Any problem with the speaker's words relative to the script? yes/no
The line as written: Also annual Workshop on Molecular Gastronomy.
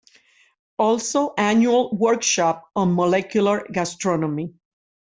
no